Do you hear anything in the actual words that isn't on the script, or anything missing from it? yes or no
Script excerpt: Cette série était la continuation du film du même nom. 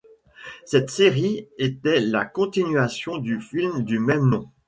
no